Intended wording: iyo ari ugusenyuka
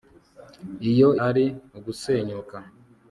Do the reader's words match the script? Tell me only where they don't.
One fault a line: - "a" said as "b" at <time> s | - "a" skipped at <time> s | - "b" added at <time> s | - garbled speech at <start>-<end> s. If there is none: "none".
none